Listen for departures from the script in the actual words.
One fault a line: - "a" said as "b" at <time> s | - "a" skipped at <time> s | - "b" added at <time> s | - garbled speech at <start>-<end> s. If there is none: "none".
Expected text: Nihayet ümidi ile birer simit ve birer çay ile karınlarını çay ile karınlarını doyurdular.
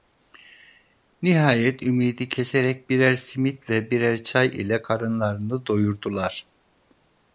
- "ile" said as "keserek" at 2.3 s
- "çay ile karınlarını" skipped at 5.7 s